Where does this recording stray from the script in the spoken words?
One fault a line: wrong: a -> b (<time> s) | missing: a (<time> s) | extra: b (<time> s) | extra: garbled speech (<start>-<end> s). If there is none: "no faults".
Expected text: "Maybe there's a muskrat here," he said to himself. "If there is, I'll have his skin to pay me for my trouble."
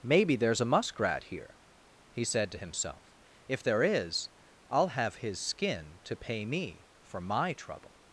no faults